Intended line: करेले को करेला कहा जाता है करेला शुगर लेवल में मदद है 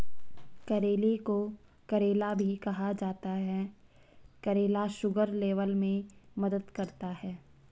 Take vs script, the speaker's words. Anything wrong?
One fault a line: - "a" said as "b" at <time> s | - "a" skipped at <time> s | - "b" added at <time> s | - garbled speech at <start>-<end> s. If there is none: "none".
- "भी" added at 2.3 s
- "करता" added at 6.7 s